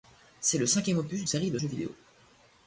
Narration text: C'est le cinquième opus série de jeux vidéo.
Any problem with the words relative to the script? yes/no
no